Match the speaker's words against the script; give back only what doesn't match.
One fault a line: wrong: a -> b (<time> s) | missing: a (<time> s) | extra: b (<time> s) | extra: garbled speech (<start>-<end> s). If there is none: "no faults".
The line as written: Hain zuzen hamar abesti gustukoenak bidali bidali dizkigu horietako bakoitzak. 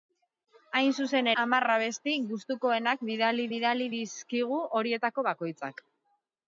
no faults